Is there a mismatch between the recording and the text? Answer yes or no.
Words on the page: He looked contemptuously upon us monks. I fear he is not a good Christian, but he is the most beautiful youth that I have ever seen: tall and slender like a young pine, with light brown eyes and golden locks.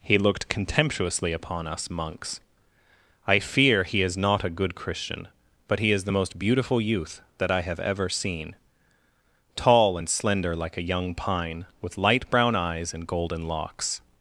no